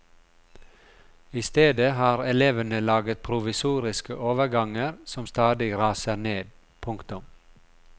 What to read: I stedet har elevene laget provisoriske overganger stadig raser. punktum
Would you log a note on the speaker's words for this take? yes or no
yes